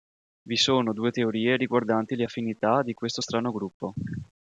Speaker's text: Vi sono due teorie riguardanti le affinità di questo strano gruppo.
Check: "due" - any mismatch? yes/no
no